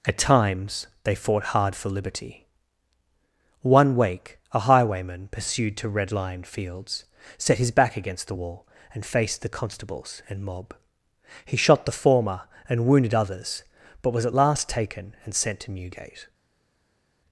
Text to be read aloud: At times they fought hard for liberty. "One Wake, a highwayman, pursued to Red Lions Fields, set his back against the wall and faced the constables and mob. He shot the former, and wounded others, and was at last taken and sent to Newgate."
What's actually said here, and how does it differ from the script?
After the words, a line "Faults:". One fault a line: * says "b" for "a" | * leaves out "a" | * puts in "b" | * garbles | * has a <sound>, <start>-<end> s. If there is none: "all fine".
At times they fought hard for liberty. "One Wake, a highwayman, pursued to Red Lion Fields, set his back against the wall and faced the constables and mob. He shot the former, and wounded others, but was at last taken and sent to Newgate."
Faults:
* says "Lion" for "Lions"
* says "but" for "and"